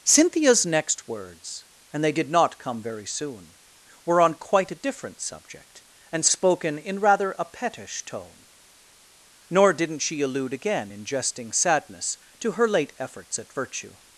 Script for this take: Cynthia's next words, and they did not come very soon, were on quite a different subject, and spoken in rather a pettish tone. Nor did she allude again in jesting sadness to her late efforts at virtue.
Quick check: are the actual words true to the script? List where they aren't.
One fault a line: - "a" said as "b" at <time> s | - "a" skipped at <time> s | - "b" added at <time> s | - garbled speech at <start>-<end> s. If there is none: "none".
- "did" said as "didn't" at 9.7 s